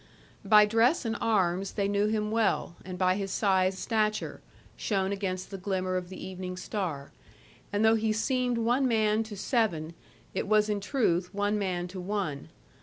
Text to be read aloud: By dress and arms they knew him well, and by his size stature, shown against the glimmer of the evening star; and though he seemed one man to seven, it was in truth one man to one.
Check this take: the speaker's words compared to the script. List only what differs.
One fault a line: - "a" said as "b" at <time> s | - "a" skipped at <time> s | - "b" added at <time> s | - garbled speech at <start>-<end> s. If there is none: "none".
none